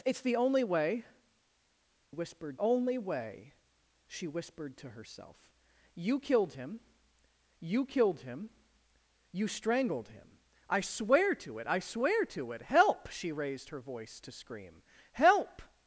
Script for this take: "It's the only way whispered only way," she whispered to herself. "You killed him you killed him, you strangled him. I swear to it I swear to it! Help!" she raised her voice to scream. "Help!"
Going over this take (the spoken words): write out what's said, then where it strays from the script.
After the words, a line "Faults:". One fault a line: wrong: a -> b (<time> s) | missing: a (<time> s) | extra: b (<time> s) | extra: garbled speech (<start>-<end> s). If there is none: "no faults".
"It's the only way whispered only way," she whispered to herself. "You killed him you killed him, you strangled him. I swear to it I swear to it! Help!" she raised her voice to scream. "Help!"
Faults:
no faults